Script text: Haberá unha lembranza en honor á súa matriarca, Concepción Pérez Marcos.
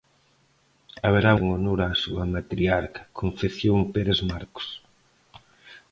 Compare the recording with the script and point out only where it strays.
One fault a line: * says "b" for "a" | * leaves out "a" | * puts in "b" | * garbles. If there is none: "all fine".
* leaves out "unha lembranza"